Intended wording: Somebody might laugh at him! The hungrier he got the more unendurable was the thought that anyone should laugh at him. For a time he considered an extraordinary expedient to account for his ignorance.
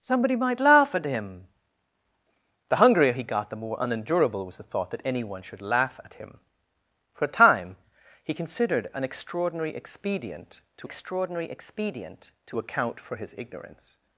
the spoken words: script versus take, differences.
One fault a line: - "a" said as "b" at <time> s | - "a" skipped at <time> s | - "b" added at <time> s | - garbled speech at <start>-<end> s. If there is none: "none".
- "extraordinary expedient to" added at 10.8 s